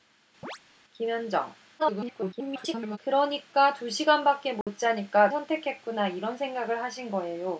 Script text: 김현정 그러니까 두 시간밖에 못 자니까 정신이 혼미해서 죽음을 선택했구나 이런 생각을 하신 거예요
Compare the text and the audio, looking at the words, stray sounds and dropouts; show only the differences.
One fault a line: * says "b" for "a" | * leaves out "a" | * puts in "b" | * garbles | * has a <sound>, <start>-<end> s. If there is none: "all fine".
* has a chirp, 0.4-0.6 s
* garbles
* has a dropout, 4.6-4.7 s
* leaves out "정신이 혼미해서 죽음을"